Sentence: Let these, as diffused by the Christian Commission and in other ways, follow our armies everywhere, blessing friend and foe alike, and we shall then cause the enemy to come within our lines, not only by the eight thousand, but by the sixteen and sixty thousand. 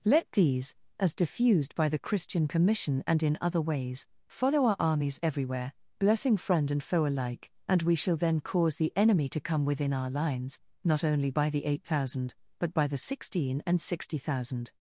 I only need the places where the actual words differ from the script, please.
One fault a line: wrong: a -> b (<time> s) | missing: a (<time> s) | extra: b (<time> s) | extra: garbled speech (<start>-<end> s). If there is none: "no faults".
no faults